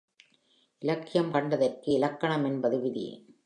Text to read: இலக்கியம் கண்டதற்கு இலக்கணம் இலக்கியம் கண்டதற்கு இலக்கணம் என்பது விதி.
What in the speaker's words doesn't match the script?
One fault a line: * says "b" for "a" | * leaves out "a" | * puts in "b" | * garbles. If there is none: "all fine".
* leaves out "இலக்கியம் கண்டதற்கு இலக்கணம்"